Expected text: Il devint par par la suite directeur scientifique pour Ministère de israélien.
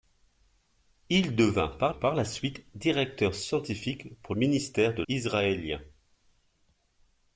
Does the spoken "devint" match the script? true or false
true